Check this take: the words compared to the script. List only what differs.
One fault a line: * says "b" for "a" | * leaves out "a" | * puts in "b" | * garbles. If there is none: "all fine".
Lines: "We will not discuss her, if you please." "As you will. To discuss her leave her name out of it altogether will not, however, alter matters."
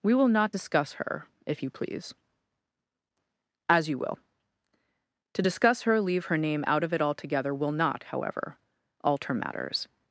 all fine